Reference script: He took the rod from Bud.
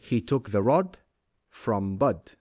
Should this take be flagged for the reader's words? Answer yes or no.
no